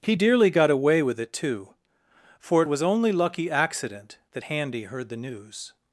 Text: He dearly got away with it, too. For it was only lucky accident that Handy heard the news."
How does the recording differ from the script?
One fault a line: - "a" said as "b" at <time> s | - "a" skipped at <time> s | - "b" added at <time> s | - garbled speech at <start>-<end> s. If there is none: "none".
none